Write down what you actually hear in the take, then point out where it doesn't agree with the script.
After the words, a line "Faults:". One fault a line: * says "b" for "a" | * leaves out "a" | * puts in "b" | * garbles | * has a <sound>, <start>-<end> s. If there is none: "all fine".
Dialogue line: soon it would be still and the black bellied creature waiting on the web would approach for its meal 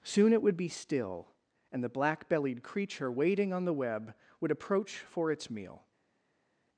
soon it would be still and the black bellied creature waiting on the web would approach for its meal
Faults:
all fine